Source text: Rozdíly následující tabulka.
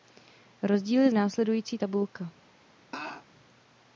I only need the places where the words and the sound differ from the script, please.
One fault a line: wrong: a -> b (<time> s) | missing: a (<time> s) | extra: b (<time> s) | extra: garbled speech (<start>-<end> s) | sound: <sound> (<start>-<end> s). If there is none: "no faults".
sound: laugh (2.9-3.3 s)